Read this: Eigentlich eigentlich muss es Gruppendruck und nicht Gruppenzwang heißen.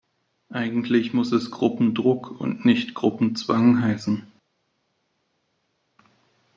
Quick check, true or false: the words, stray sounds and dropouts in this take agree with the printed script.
false